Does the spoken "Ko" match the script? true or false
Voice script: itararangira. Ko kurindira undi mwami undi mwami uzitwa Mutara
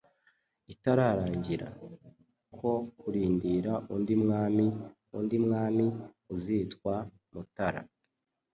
true